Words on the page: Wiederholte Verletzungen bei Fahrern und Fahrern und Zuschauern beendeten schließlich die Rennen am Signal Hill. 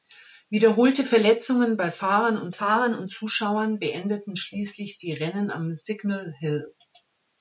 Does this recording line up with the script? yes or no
yes